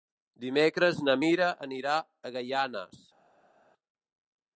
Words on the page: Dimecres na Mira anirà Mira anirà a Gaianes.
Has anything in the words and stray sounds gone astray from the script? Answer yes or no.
yes